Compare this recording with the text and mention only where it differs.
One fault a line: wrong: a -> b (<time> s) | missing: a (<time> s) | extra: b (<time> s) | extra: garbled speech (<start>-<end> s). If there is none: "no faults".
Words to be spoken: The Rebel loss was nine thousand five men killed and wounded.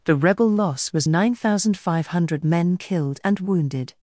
extra: hundred (2.1 s)